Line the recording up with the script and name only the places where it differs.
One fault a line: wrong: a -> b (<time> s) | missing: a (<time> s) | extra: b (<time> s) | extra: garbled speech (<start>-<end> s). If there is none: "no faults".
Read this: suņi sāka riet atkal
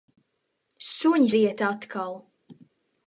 missing: sāka (1.3 s)